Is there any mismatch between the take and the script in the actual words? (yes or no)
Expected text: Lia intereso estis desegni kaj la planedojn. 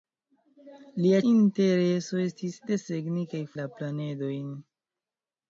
no